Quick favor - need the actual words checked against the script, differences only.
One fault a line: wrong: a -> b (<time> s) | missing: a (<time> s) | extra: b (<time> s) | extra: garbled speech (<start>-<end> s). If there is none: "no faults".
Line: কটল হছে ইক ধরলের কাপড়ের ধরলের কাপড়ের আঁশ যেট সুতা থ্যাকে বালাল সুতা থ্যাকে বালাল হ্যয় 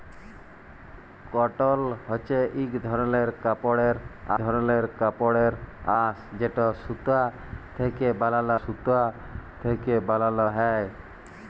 no faults